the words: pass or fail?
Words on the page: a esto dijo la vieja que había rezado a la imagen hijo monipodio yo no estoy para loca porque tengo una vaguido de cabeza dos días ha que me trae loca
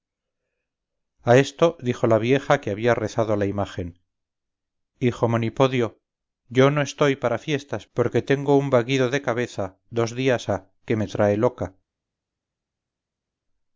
fail